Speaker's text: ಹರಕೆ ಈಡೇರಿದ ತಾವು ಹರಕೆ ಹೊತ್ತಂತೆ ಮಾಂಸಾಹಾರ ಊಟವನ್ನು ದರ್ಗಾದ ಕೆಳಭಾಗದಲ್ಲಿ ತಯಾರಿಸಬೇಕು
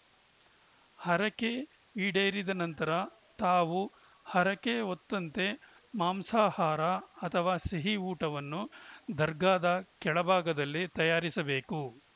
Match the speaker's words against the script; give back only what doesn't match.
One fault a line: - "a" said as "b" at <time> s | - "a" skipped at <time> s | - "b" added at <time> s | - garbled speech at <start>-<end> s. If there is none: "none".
- "ನಂತರ" added at 2.6 s
- "ಅಥವಾ ಸಿಹಿ" added at 7.2 s